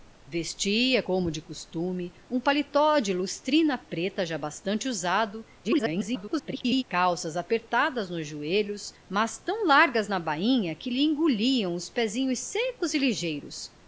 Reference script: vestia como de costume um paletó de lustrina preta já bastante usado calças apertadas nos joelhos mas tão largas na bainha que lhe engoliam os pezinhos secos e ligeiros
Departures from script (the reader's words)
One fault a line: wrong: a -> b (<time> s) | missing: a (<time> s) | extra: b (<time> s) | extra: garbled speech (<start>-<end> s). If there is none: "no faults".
extra: garbled speech (5.6-6.8 s)